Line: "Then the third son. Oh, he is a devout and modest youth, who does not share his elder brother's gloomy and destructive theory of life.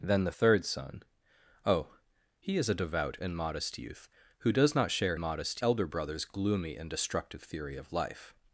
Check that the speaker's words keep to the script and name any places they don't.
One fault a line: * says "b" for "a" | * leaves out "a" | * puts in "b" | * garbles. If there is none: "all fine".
* says "modest" for "his"